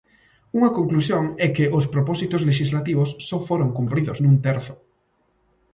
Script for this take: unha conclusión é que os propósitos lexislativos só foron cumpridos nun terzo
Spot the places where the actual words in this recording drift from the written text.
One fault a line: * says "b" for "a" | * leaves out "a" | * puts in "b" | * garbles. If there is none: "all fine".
all fine